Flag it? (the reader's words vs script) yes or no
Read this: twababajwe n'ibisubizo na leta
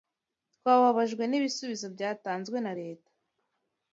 yes